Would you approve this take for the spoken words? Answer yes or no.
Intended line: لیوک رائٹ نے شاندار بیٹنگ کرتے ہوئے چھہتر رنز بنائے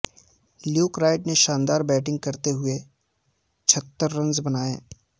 yes